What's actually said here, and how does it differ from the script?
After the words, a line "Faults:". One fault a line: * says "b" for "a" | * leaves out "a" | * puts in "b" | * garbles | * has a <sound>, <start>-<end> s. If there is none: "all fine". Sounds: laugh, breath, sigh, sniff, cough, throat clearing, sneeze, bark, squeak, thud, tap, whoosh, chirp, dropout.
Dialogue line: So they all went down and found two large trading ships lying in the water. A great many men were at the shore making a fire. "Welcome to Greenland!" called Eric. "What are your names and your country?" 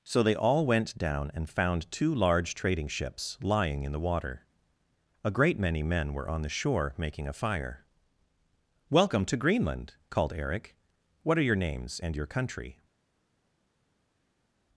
So they all went down and found two large trading ships lying in the water. A great many men were on the shore making a fire. "Welcome to Greenland!" called Eric. "What are your names and your country?"
Faults:
* says "on" for "at"